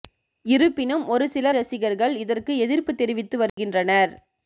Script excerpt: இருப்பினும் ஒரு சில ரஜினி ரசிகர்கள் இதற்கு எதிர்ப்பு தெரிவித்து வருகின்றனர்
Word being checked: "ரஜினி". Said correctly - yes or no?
no